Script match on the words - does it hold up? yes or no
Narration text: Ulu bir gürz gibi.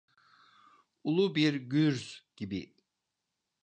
yes